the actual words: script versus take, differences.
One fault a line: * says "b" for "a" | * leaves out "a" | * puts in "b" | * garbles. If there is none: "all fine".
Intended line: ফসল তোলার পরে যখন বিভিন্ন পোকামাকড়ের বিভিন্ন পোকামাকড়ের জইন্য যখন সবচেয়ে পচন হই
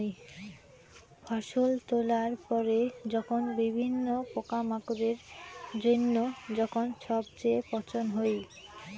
* leaves out "বিভিন্ন পোকামাকড়ের"